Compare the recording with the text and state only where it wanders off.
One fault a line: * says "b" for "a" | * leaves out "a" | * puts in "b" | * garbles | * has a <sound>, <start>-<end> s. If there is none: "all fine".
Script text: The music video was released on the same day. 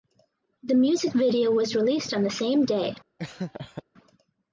* has a laugh, 3.2-3.8 s